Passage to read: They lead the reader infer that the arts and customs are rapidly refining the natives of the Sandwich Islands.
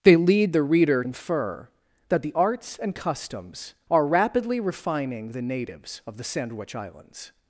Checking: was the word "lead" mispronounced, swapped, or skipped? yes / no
no